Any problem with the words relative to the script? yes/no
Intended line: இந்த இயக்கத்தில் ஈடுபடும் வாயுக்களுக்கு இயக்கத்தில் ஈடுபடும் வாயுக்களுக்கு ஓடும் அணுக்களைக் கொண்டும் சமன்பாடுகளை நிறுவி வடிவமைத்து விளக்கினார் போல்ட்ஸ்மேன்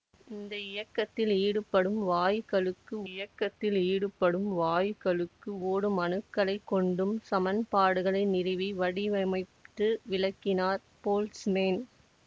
no